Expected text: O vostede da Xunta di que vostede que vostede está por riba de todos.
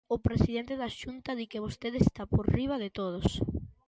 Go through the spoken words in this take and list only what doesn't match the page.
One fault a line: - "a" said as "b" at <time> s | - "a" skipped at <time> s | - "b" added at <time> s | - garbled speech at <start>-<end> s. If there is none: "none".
- "vostede" said as "presidente" at 0.3 s
- "que vostede" skipped at 2.0 s